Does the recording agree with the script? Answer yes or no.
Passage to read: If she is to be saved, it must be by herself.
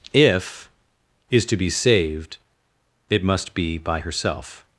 no